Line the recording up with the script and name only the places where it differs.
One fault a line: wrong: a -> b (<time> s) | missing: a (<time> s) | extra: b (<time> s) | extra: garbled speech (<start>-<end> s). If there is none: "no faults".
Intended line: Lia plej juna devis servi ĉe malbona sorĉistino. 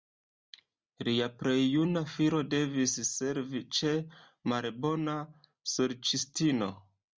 extra: filo (2.1 s)